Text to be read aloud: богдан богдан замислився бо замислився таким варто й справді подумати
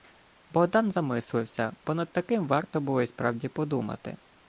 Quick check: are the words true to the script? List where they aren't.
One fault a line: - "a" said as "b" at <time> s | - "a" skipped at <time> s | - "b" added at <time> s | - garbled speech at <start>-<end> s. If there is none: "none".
- "богдан" skipped at 0.9 s
- "замислився" said as "над" at 1.9 s
- "було" added at 2.8 s